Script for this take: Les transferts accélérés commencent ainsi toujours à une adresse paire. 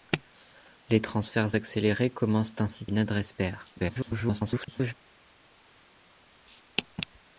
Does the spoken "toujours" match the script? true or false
false